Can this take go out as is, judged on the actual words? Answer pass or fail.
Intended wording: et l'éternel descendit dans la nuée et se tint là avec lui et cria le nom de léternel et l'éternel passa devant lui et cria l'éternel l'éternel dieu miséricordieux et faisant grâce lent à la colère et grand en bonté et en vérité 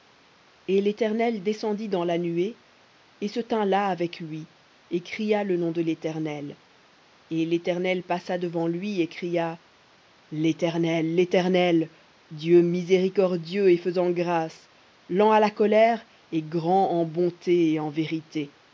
pass